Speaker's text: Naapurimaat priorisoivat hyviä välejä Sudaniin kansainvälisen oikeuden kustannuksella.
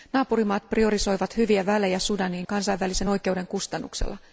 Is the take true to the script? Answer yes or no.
yes